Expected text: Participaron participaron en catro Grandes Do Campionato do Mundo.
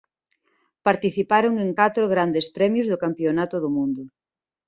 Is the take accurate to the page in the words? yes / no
no